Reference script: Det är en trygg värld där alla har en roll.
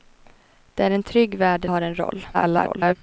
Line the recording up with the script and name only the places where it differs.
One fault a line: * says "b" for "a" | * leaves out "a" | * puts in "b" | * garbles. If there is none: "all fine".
* leaves out "alla"
* garbles